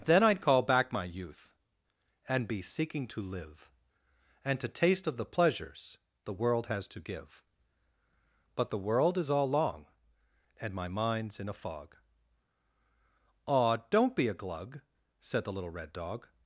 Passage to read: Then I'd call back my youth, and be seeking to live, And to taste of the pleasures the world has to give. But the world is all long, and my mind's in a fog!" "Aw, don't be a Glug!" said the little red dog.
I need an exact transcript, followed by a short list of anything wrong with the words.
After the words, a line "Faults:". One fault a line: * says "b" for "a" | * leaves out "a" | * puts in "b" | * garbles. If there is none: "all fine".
Then I'd call back my youth, and be seeking to live, And to taste of the pleasures the world has to give. But the world is all long, and my mind's in a fog!" "Aw, don't be a Glug!" said the little red dog.
Faults:
all fine